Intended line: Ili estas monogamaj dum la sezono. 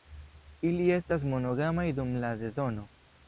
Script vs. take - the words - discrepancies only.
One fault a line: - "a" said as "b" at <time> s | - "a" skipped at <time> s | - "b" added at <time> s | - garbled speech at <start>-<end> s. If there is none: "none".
none